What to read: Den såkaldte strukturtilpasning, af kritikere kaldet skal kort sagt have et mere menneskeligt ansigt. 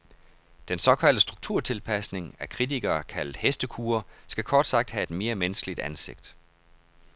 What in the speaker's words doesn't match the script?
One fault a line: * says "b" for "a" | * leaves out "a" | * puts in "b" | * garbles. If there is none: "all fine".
* puts in "hestekure"